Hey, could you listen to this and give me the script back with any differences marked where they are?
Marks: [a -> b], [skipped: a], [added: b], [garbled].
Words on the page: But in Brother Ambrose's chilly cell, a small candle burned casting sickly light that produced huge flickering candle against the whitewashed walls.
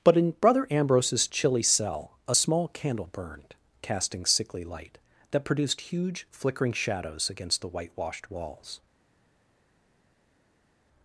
But in Brother Ambrose's chilly cell, a small candle burned casting sickly light that produced huge flickering [candle -> shadows] against the whitewashed walls.